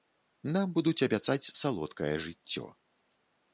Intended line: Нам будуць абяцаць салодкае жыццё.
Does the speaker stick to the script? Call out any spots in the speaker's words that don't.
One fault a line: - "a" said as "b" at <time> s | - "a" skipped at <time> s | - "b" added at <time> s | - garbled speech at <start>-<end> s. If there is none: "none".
none